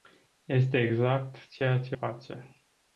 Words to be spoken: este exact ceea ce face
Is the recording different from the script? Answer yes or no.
no